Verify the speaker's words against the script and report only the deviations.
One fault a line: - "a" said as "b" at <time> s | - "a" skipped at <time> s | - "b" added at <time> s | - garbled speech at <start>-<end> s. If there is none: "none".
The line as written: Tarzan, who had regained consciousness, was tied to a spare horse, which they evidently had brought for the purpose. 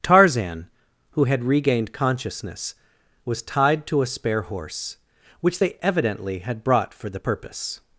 none